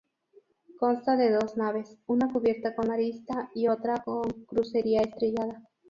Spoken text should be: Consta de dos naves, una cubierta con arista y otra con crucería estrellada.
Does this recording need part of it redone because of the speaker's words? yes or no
no